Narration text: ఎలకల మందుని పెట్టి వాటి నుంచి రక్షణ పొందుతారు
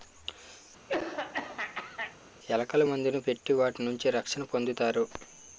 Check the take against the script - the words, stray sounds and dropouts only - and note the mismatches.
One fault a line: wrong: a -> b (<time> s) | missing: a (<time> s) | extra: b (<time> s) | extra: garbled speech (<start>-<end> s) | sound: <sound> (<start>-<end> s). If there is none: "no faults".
sound: throat clearing (0.9-2.2 s)